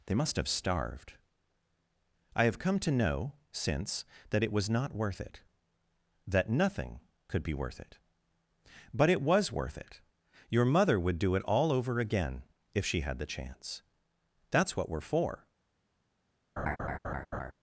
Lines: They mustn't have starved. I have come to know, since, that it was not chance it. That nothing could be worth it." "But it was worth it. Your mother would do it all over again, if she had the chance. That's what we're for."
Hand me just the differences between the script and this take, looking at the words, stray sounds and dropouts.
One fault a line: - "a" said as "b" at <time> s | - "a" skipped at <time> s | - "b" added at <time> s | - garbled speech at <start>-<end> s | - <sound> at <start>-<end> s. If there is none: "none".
- "mustn't" said as "must" at 0.1 s
- "chance" said as "worth" at 5.0 s
- laugh at 16.6-17.5 s